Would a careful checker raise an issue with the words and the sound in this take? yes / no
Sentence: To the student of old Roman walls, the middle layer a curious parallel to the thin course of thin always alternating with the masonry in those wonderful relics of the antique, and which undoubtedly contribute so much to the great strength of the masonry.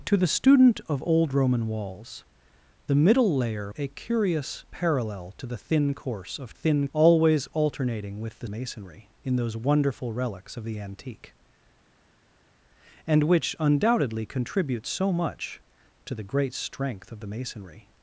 no